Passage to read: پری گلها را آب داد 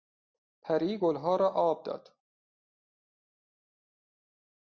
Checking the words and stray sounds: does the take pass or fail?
pass